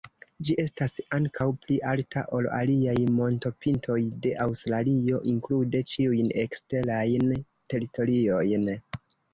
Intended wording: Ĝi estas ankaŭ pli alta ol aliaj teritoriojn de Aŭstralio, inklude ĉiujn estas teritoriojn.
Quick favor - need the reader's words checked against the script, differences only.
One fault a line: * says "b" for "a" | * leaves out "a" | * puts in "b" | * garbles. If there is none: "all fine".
* says "montopintoj" for "teritoriojn"
* says "eksterajn" for "estas"